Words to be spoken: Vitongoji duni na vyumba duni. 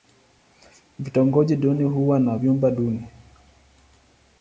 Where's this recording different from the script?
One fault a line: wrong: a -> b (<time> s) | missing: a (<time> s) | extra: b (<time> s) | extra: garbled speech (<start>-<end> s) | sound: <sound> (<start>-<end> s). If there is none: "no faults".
extra: huwa (1.8 s)